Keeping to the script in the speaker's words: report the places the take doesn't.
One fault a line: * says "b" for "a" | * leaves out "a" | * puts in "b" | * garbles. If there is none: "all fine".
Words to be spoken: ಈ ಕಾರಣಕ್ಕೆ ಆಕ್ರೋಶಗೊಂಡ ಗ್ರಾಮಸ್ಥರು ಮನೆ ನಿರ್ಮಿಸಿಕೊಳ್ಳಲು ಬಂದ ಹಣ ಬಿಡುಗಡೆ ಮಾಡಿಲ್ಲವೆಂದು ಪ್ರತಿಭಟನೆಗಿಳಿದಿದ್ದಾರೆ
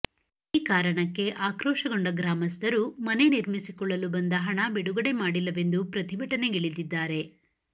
all fine